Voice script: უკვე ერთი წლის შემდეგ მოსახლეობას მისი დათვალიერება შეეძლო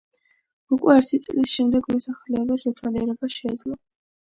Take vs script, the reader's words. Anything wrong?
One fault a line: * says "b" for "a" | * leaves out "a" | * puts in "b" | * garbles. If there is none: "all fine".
* leaves out "მისი"